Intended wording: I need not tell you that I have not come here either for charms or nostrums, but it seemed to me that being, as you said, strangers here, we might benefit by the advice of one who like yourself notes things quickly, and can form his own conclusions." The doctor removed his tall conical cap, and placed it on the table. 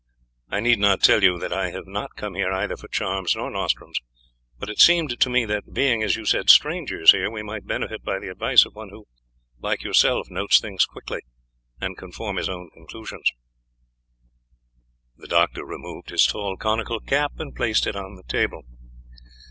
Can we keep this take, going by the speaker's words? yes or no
yes